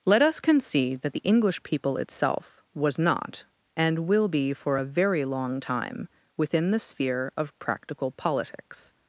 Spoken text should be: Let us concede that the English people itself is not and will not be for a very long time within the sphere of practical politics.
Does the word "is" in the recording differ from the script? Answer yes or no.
yes